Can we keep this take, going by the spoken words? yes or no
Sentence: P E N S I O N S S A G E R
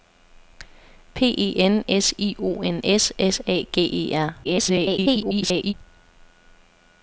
no